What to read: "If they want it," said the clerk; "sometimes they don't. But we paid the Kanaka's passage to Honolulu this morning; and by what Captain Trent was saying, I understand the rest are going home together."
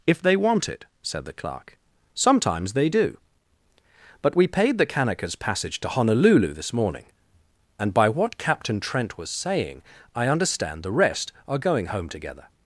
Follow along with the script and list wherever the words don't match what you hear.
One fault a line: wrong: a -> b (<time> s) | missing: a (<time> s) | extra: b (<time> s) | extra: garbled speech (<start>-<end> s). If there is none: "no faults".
wrong: don't -> do (2.9 s)